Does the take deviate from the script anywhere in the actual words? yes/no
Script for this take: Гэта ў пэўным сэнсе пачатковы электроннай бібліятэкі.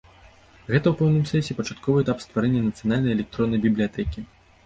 yes